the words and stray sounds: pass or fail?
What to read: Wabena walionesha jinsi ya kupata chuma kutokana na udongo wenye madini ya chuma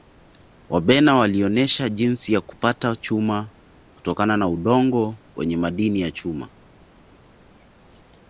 pass